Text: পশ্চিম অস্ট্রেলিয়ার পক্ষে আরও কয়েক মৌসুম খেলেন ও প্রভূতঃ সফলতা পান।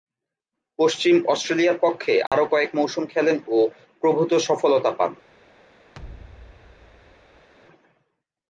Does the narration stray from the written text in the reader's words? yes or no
no